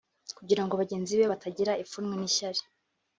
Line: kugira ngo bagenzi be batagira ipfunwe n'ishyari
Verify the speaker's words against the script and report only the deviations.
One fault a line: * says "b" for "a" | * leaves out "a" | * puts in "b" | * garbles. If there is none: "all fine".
all fine